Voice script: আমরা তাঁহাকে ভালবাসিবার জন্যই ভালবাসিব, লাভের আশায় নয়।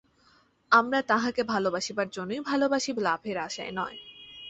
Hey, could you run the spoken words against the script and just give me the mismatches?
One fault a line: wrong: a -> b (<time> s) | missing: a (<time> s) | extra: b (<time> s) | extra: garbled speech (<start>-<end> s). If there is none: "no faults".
no faults